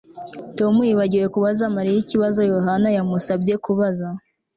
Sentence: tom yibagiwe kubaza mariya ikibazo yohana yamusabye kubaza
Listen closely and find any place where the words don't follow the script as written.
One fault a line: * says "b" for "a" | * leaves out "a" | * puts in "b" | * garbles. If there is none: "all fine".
all fine